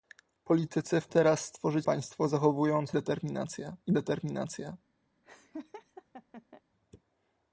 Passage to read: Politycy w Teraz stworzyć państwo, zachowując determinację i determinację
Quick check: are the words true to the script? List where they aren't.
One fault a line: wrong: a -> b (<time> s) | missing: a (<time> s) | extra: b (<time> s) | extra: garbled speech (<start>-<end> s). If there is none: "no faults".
no faults